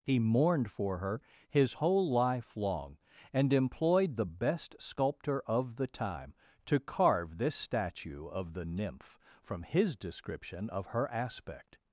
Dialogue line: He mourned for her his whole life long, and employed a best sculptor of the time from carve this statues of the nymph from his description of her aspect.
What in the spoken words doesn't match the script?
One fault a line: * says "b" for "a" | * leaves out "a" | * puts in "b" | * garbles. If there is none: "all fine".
* says "the" for "a"
* says "to" for "from"
* says "statue" for "statues"